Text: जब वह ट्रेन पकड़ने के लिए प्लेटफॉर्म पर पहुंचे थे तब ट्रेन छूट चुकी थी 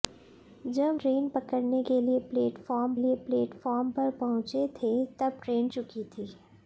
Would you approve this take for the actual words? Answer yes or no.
no